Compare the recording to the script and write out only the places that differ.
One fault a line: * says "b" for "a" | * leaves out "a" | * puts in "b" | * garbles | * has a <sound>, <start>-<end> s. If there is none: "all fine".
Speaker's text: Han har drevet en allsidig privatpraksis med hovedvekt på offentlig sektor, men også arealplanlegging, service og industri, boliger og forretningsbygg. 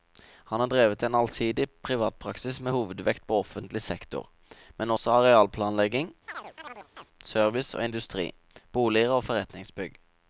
* has a chirp, 6.3-7.1 s